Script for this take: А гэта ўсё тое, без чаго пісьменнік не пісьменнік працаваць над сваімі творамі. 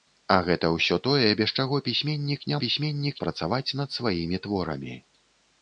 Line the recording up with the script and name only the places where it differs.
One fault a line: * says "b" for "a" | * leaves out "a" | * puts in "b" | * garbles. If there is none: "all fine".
all fine